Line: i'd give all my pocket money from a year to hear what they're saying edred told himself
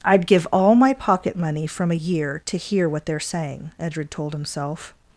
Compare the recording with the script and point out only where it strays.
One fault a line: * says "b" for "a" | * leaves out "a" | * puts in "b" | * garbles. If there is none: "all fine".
all fine